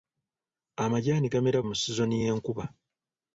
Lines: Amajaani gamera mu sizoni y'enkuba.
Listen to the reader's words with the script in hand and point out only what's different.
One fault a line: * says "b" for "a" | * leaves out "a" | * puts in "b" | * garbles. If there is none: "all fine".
all fine